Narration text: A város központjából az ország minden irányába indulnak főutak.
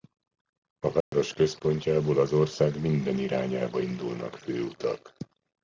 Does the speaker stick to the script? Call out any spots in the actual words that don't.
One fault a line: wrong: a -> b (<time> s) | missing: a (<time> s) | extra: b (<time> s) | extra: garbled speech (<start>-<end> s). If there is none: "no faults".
no faults